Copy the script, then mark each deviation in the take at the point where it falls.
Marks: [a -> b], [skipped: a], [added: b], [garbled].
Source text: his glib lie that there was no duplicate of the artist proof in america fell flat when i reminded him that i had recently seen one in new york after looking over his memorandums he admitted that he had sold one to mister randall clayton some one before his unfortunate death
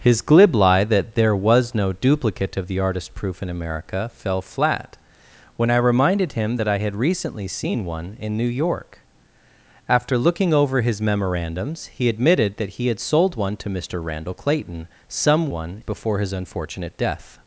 his glib lie that there was no duplicate of the artist proof in america fell flat when i reminded him that i had recently seen one in new york after looking over his memorandums he admitted that he had sold one to mister randall clayton some one before his unfortunate death